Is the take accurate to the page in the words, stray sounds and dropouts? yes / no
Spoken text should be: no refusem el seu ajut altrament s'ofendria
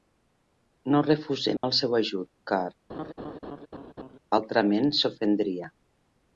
no